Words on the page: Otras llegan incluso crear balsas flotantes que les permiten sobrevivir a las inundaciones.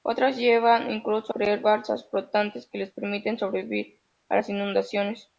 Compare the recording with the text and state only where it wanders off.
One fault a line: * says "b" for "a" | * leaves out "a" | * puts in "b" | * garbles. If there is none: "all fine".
all fine